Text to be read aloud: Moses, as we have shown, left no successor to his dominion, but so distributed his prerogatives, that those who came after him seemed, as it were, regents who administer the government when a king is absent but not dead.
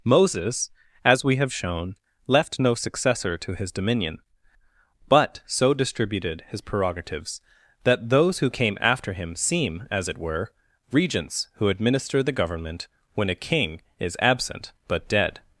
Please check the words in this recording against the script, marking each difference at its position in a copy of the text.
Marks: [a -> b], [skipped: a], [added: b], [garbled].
Moses, as we have shown, left no successor to his dominion, but so distributed his prerogatives, that those who came after him [seemed, -> seem] as it were, regents who administer the government when a king is absent but [skipped: not] dead.